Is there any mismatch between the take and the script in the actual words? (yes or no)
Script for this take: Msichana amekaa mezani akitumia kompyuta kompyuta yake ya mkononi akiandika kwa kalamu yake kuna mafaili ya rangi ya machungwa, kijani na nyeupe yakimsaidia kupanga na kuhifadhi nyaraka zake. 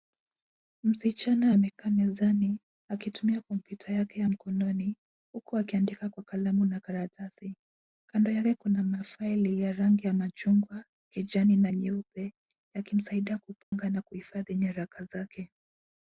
yes